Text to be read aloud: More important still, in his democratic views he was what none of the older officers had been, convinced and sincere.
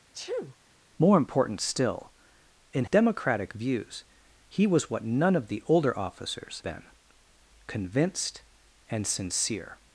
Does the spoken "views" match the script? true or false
true